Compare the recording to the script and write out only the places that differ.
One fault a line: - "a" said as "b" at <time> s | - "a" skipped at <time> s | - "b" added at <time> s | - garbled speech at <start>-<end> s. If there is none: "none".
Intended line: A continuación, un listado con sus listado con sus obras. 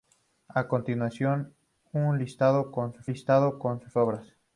none